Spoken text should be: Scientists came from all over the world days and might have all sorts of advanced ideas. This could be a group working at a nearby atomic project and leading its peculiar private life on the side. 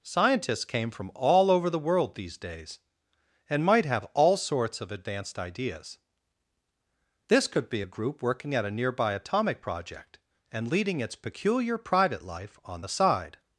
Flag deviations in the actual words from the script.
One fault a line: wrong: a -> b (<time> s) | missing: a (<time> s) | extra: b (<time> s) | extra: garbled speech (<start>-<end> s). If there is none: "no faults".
extra: these (2.1 s)